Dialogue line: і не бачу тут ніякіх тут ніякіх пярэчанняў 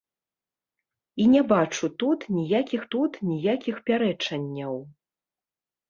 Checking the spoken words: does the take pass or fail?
pass